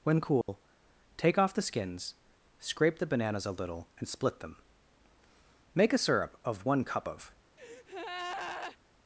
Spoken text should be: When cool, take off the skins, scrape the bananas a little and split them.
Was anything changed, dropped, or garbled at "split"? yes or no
no